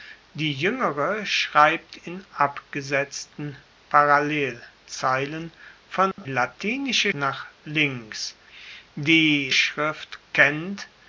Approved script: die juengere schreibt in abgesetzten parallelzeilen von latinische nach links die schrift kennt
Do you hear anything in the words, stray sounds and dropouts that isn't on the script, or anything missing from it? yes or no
yes